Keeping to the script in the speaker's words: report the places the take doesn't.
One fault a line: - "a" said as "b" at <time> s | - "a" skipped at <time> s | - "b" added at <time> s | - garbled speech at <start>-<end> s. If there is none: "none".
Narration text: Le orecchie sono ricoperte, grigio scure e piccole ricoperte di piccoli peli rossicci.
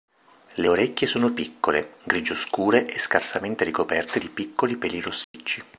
- "ricoperte" said as "piccole" at 1.3 s
- "piccole" said as "scarsamente" at 3.0 s